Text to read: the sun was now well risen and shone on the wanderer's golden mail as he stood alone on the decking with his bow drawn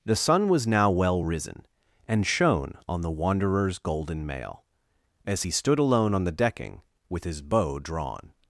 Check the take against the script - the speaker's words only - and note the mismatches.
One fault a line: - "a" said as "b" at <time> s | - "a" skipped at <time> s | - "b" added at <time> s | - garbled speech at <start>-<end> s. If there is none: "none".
none